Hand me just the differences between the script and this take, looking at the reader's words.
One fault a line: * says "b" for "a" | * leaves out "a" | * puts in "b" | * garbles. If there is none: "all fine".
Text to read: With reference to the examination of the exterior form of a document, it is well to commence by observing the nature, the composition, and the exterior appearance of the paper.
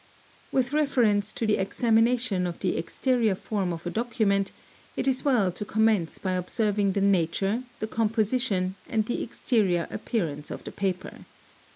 all fine